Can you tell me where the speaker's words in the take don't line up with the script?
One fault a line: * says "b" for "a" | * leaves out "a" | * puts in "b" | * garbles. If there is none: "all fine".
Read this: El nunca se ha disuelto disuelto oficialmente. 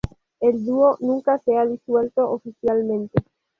* puts in "dúo"
* leaves out "disuelto"